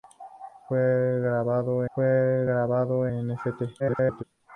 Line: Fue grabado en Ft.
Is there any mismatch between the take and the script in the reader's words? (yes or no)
yes